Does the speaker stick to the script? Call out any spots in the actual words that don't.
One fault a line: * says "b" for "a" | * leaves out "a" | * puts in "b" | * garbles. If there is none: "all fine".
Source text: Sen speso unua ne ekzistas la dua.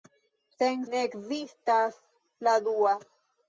* leaves out "speso unua"